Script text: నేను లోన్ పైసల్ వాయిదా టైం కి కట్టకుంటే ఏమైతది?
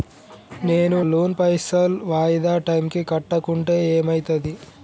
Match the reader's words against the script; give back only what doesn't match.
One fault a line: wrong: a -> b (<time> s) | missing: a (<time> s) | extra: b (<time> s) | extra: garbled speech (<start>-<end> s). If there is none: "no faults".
no faults